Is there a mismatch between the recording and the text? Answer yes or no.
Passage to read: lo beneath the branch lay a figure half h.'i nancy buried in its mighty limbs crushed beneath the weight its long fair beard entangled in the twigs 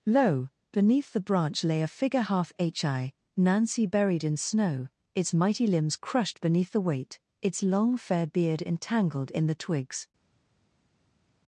yes